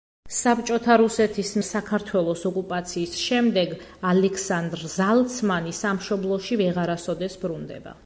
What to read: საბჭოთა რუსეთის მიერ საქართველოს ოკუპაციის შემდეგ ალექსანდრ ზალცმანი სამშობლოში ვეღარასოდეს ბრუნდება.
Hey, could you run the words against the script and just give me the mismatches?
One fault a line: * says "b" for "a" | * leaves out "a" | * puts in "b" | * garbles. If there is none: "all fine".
* leaves out "მიერ"